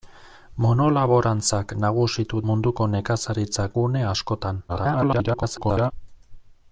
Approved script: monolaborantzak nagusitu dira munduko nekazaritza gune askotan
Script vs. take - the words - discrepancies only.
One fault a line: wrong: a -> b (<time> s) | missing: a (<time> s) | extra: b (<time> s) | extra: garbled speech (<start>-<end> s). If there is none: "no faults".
missing: dira (2.4 s)
extra: garbled speech (4.7-5.9 s)